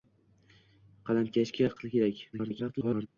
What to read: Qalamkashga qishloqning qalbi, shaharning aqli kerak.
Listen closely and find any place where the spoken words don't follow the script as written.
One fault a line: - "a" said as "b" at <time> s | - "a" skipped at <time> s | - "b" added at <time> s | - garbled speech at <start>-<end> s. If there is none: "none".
- "qishloqning qalbi shaharning" skipped at 1.7 s
- garbled speech at 2.3-3.1 s